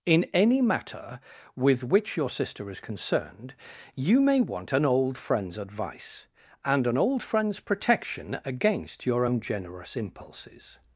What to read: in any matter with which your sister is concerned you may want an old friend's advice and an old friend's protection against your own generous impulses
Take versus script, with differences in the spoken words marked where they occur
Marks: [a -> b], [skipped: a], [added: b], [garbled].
in any matter with which your sister is concerned you may want an old friend's advice and an old friend's protection against your own generous impulses